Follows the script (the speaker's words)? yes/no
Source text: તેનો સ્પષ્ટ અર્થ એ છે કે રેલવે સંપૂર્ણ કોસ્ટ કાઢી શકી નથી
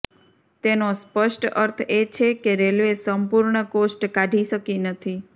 yes